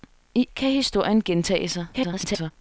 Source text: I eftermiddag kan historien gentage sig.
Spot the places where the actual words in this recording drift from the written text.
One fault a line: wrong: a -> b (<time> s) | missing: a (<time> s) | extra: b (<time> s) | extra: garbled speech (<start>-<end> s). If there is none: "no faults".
missing: eftermiddag (0.5 s)
extra: garbled speech (1.9-2.5 s)